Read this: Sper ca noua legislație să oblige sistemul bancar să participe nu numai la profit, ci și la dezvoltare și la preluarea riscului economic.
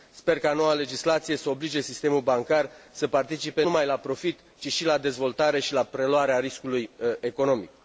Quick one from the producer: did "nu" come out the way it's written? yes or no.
no